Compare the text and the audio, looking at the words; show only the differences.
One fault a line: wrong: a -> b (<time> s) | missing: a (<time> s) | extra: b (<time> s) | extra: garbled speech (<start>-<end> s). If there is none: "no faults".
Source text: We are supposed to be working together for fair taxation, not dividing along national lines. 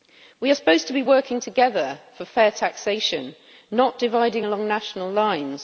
no faults